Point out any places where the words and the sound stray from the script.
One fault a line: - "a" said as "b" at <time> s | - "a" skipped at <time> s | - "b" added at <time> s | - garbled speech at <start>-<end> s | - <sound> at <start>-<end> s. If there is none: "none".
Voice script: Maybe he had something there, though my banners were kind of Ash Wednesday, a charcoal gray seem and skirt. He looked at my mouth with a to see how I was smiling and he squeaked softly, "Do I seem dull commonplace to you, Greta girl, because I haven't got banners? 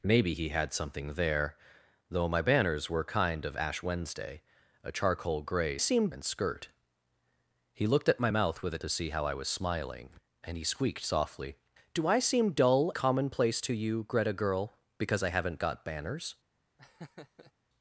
- laugh at 16.8-17.5 s